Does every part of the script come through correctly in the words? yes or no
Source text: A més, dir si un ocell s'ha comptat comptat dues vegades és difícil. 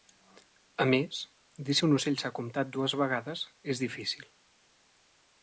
no